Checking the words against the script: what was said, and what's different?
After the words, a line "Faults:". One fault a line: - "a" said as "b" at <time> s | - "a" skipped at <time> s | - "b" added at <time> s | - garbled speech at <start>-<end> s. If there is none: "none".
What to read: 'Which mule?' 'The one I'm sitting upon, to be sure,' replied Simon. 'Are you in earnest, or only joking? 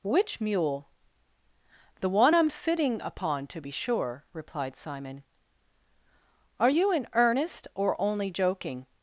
'Which mule?' 'The one I'm sitting upon, to be sure,' replied Simon. 'Are you in earnest, or only joking?
Faults:
none